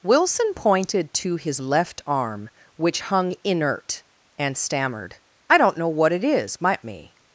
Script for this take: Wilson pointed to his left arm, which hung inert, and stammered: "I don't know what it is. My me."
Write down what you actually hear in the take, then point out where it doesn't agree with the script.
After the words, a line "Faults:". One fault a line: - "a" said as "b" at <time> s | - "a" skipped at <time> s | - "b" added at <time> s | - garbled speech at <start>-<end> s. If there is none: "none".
Wilson pointed to his left arm, which hung inert, and stammered: "I don't know what it is. My me."
Faults:
none